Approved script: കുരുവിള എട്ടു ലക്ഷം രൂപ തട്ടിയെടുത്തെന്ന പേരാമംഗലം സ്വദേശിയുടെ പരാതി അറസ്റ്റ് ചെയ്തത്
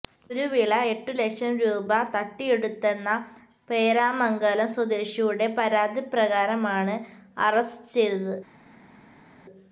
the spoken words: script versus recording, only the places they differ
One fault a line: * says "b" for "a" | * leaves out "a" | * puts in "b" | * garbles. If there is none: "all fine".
* puts in "പ്രകാരമാണ്"